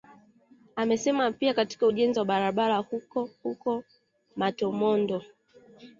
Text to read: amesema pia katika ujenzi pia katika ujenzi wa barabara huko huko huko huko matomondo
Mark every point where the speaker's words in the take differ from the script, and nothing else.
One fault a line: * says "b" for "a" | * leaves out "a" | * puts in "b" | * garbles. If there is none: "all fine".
* leaves out "pia katika ujenzi"
* leaves out "huko huko"